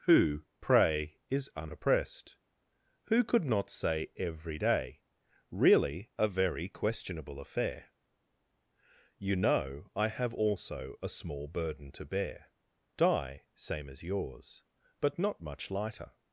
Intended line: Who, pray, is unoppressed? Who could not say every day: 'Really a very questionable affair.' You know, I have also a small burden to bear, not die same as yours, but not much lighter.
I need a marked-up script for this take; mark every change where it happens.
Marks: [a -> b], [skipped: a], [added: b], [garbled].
Who, pray, is unoppressed? Who could not say every day: 'Really a very questionable affair.' You know, I have also a small burden to bear, [skipped: not] die same as yours, but not much lighter.